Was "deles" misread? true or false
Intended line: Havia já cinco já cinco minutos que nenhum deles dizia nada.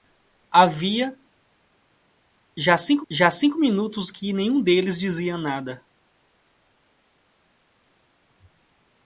false